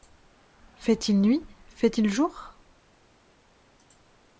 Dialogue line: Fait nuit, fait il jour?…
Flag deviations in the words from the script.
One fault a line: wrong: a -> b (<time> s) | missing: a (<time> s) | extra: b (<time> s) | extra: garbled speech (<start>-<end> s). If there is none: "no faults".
extra: il (1.1 s)